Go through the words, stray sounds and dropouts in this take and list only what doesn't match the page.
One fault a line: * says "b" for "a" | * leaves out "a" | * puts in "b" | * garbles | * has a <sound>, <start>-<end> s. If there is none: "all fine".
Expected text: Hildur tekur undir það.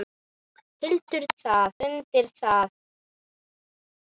* says "það" for "tekur"